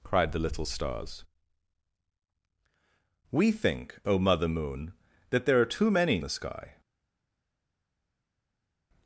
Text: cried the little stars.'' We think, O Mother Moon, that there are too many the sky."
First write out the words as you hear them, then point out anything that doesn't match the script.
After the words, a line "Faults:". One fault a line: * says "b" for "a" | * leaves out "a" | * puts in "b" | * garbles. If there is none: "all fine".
cried the little stars.'' We think, O Mother Moon, that there are too many the sky."
Faults:
all fine